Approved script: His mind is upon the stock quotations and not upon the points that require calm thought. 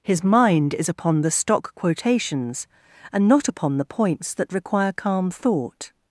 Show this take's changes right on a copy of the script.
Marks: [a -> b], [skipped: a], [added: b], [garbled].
His mind is upon the stock quotations and not upon the points that require calm thought.